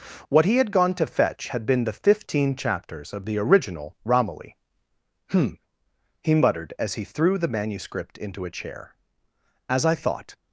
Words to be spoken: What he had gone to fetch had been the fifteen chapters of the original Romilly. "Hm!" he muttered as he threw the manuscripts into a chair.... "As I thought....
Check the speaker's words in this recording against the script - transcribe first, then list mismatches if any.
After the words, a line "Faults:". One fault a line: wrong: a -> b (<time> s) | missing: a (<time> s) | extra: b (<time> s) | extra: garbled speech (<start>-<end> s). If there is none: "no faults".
What he had gone to fetch had been the fifteen chapters of the original Romilly. "Hm!" he muttered as he threw the manuscript into a chair.... "As I thought....
Faults:
wrong: manuscripts -> manuscript (7.5 s)